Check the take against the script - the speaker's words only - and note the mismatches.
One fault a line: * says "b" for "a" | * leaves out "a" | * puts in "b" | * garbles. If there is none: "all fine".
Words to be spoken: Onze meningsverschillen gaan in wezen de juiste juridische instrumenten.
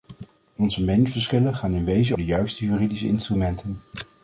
all fine